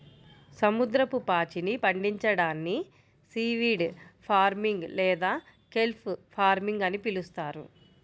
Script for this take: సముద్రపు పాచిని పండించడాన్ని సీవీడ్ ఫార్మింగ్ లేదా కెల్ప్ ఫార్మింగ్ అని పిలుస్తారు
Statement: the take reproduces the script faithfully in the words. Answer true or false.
true